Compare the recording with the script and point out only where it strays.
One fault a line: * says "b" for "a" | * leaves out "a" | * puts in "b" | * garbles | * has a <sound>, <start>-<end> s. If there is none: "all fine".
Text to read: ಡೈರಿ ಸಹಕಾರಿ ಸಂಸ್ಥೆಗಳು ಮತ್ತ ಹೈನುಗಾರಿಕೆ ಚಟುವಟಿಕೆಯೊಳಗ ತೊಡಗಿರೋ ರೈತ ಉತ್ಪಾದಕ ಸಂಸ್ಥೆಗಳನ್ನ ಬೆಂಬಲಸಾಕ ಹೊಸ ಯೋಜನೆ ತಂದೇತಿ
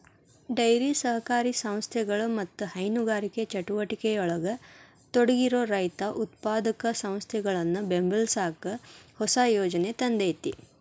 all fine